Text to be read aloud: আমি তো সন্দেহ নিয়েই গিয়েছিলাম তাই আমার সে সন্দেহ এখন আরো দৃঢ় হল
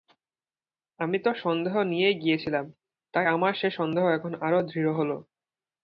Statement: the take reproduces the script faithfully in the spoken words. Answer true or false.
true